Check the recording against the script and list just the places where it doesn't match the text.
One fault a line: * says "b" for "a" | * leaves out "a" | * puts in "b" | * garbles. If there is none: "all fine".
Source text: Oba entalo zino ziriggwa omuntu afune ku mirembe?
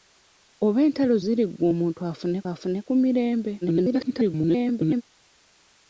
* leaves out "zino"
* puts in "afune"
* garbles